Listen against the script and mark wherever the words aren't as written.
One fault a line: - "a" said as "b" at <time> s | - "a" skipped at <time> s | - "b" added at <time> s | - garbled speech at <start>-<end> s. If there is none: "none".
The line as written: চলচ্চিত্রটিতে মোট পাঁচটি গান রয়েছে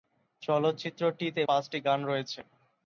- "মোট" skipped at 1.4 s